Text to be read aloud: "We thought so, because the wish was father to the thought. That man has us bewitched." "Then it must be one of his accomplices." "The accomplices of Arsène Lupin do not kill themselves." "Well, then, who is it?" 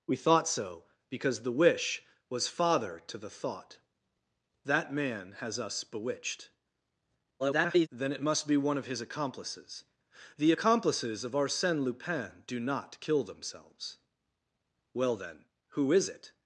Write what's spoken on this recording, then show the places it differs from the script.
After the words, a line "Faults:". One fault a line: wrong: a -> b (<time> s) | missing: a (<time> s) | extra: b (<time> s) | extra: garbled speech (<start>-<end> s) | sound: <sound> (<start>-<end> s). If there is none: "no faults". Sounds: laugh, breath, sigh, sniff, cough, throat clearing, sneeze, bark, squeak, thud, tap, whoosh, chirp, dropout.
"We thought so, because the wish was father to the thought. That man has us bewitched." [garbled] "Then it must be one of his accomplices." "The accomplices of Arsène Lupin do not kill themselves." "Well, then, who is it?"
Faults:
extra: garbled speech (7.4-7.9 s)